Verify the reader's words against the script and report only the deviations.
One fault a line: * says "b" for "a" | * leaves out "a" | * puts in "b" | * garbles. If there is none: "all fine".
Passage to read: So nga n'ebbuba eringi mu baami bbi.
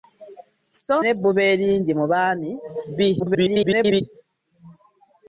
* leaves out "nga"
* garbles